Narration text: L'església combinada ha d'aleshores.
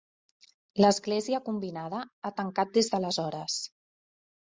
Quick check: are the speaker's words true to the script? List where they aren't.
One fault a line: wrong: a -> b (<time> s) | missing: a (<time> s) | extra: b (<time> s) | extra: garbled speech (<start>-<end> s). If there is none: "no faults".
extra: tancat des (2.4 s)